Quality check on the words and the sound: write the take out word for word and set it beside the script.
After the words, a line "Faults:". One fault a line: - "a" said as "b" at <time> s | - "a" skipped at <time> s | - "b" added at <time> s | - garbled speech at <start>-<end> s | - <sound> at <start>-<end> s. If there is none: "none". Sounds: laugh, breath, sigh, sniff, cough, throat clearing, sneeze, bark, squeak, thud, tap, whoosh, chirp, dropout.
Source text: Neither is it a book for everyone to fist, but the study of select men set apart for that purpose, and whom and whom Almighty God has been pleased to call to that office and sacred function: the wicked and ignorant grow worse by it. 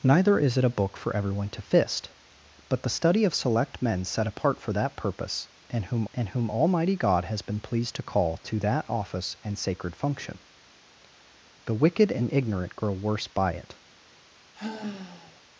Neither is it a book for everyone to fist, but the study of select men set apart for that purpose, and whom and whom Almighty God has been pleased to call to that office and sacred function: the wicked and ignorant grow worse by it.
Faults:
- sigh at 14.5-15.4 s